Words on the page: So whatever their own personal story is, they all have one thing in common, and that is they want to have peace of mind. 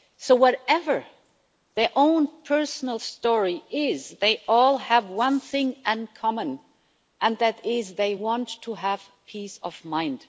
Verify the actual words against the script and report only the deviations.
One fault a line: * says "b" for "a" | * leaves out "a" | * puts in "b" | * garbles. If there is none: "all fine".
all fine